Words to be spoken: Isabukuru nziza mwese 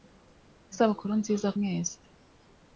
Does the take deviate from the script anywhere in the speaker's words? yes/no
no